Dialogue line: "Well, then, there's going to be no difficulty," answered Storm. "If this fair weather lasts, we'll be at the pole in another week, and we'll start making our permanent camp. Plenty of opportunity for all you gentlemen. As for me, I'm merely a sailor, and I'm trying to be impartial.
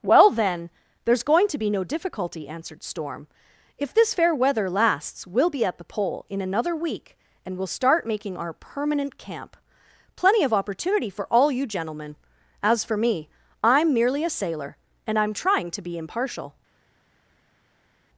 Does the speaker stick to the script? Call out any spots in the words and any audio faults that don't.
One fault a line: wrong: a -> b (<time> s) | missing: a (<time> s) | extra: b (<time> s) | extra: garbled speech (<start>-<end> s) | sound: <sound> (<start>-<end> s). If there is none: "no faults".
no faults